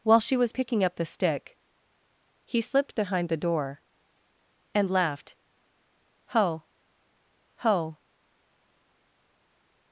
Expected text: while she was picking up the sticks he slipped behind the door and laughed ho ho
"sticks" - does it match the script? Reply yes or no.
no